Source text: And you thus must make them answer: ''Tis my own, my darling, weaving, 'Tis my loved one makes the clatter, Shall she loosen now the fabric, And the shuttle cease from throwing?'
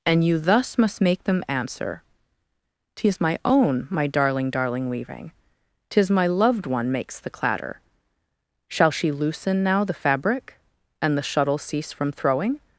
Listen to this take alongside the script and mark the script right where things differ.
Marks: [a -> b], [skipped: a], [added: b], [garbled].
And you thus must make them answer: ''Tis my own, my darling, [added: darling] weaving, 'Tis my loved one makes the clatter, Shall she loosen now the fabric, And the shuttle cease from throwing?'